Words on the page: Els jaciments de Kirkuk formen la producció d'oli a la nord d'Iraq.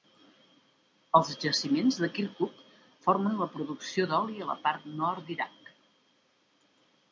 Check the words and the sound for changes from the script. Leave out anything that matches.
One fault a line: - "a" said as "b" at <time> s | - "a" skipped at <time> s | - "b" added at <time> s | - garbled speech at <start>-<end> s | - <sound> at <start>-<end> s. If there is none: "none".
- "part" added at 4.7 s